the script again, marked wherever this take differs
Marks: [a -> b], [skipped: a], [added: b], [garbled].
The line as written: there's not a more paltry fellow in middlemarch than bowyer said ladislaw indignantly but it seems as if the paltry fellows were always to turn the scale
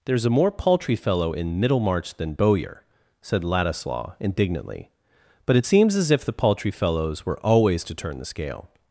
there's [skipped: not] a more paltry fellow in middlemarch than bowyer said ladislaw indignantly but it seems as if the paltry fellows were always to turn the scale